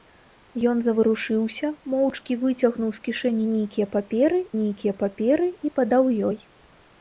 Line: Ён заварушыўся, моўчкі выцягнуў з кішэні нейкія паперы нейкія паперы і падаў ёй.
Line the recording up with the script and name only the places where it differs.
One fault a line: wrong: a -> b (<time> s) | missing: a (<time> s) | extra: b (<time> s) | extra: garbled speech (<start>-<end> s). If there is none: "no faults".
no faults